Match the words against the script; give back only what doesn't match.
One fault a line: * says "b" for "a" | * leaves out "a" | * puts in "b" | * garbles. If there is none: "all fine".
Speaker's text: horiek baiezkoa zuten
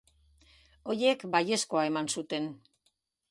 * puts in "eman"